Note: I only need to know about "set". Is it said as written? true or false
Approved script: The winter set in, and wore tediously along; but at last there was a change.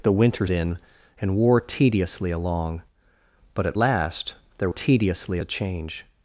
false